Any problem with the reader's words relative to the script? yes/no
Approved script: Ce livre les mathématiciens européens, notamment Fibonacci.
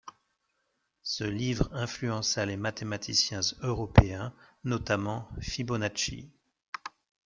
yes